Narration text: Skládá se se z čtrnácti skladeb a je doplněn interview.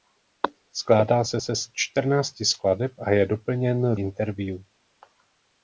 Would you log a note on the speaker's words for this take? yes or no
no